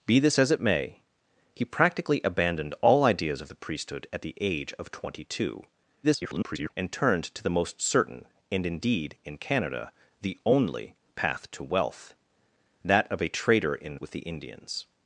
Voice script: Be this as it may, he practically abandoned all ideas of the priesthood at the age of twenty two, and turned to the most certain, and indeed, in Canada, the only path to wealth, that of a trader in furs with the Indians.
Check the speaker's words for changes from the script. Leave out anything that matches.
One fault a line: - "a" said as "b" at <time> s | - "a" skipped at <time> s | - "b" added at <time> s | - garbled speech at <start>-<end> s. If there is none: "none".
- garbled speech at 6.0-6.7 s
- "furs" skipped at 14.0 s